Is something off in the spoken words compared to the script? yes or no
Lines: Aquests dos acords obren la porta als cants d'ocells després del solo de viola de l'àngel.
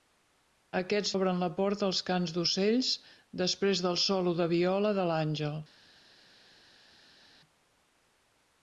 yes